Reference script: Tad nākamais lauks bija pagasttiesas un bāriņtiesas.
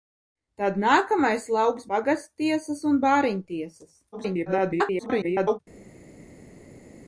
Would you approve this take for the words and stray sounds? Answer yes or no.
no